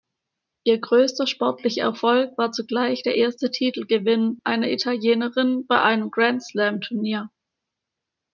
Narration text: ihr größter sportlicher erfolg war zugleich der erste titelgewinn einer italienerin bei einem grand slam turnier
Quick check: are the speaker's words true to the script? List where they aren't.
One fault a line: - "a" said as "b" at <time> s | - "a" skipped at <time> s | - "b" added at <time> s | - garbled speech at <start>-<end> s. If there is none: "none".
none